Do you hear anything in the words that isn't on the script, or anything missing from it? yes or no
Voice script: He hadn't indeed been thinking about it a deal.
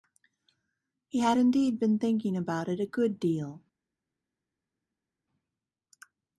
yes